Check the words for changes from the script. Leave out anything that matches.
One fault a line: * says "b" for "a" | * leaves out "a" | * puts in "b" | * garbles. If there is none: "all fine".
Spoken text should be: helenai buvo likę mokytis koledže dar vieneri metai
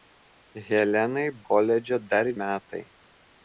* leaves out "buvo likę mokytis"
* leaves out "vieneri"